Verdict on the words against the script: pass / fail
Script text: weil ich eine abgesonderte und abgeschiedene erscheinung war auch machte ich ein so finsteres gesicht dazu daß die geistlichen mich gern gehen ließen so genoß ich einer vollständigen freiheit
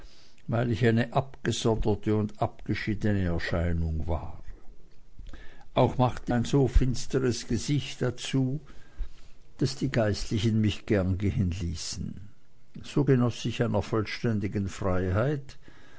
fail